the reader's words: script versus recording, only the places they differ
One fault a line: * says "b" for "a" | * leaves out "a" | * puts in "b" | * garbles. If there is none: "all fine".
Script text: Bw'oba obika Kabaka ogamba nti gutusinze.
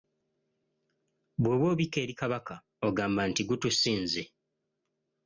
* puts in "eri"